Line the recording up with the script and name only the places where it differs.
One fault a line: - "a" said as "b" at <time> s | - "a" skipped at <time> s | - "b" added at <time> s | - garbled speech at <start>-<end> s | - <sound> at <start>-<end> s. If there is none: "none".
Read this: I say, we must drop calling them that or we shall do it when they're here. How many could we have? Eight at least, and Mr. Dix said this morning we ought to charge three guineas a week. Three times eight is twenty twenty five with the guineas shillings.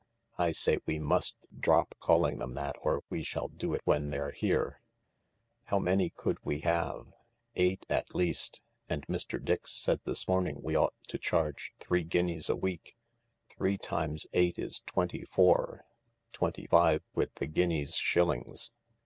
- "four" added at 15.2 s